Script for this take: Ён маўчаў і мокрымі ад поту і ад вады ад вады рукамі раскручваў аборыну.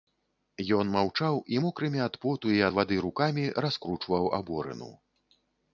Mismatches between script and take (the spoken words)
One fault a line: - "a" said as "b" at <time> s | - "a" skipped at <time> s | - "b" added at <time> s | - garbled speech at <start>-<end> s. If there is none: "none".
- "ад вады" skipped at 3.0 s